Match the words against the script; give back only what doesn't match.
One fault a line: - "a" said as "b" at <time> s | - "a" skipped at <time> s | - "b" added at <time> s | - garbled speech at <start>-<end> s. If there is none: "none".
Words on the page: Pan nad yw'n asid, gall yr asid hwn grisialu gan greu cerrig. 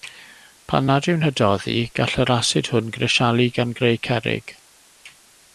- "asid" said as "hydoddi" at 1.2 s